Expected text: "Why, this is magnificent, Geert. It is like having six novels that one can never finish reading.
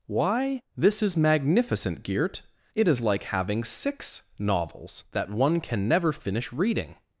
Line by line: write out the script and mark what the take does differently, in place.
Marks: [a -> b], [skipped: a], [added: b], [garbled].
"Why, this is magnificent, Geert. It is like having six novels that one can never finish reading.